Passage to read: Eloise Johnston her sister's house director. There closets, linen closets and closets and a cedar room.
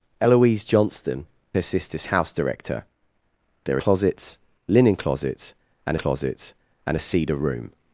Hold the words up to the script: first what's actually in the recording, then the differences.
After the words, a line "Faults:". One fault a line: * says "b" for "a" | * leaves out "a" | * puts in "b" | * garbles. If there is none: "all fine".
Eloise Johnston her sister's house director. There closets, linen closets and closets and a cedar room.
Faults:
all fine